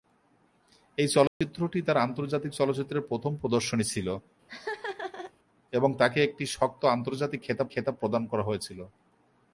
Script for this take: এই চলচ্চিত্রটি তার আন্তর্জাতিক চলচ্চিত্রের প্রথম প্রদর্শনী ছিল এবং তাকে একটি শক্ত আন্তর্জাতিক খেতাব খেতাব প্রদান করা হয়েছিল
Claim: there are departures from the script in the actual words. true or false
false